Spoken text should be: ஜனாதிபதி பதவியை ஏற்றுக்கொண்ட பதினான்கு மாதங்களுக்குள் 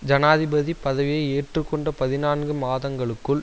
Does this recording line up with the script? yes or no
yes